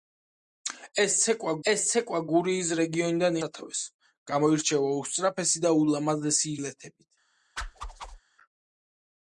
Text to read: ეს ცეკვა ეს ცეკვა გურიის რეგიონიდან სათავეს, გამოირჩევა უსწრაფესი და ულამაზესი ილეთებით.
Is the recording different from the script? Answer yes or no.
no